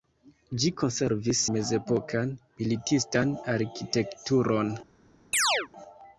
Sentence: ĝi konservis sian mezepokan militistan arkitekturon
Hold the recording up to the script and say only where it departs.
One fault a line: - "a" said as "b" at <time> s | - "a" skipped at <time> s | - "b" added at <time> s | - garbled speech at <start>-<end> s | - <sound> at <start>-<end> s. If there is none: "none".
- "sian" skipped at 1.4 s
- chirp at 5.3-5.7 s